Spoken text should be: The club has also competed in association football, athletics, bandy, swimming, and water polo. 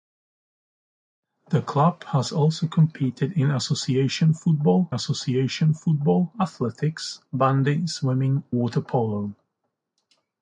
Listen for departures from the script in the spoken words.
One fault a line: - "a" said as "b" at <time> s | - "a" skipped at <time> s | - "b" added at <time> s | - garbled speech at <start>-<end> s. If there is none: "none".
- "association football" added at 4.9 s
- "and" skipped at 8.4 s